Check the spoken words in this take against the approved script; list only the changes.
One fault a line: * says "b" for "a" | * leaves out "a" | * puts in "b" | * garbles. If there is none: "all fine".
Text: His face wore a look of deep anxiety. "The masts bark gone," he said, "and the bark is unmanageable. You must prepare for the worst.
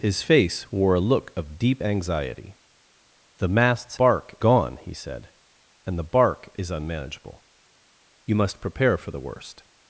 all fine